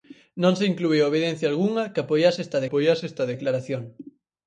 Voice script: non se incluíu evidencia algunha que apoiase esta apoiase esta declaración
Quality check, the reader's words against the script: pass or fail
pass